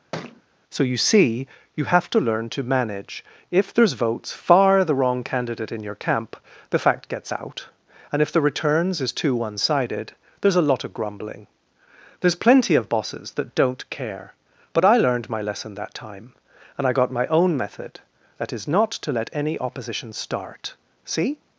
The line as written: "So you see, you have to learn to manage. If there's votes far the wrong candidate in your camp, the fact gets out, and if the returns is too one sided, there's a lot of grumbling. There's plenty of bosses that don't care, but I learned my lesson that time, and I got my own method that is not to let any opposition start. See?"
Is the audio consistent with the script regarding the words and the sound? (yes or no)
no